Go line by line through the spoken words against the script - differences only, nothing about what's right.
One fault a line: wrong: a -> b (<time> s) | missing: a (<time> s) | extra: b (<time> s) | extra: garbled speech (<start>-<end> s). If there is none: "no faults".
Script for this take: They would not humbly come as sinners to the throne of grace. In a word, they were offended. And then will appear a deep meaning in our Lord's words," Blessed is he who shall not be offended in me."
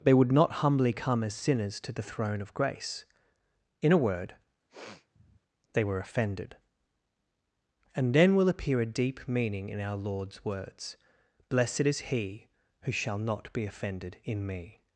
no faults